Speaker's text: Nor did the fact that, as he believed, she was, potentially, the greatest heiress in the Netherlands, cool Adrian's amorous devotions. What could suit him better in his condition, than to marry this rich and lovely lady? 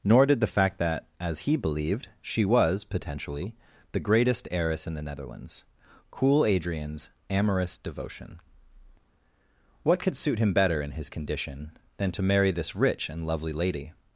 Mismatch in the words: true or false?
true